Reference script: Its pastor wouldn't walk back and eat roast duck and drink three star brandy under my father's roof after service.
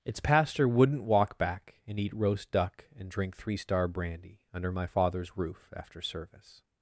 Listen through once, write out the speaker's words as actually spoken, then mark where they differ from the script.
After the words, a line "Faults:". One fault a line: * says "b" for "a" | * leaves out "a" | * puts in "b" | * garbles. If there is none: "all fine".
Its pastor wouldn't walk back and eat roast duck and drink three star brandy under my father's roof after service.
Faults:
all fine